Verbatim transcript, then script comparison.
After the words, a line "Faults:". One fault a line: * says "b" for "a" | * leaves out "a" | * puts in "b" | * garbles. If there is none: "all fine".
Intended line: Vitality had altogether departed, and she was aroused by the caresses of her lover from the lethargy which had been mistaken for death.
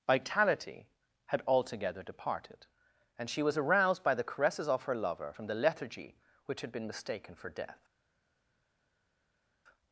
Vitality had altogether departed, and she was aroused by the caresses of her lover from the lethargy which had been mistaken for death.
Faults:
all fine